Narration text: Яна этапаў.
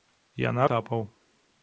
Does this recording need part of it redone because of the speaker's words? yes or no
no